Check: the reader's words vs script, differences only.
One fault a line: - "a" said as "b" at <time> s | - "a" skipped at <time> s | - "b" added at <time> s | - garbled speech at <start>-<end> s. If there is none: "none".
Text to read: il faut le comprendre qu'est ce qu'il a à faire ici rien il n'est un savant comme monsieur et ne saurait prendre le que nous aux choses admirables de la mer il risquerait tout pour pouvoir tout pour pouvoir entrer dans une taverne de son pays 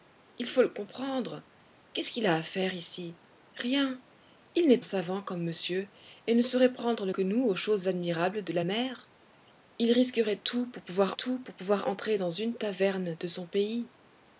none